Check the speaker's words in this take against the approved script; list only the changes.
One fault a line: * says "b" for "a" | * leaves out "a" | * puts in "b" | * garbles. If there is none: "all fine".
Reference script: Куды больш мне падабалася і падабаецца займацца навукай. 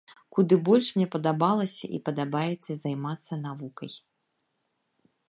all fine